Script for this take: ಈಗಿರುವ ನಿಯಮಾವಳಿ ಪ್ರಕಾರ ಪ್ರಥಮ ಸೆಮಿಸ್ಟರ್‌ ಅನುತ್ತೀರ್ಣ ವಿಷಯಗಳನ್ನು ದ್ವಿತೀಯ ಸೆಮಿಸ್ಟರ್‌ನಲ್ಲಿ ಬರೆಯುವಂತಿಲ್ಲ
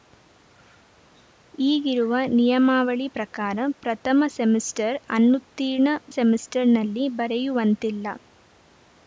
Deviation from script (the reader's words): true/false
true